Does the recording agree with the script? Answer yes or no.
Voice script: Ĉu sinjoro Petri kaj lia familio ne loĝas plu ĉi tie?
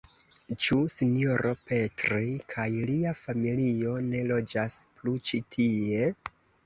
yes